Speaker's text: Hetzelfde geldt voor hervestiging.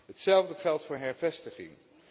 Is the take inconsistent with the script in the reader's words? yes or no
no